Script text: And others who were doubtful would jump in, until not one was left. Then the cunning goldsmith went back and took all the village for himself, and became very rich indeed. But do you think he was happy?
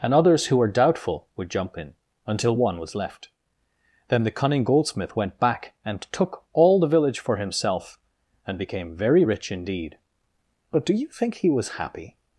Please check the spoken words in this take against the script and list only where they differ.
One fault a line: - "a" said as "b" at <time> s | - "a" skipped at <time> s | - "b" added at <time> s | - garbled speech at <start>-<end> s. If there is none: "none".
- "not" skipped at 2.5 s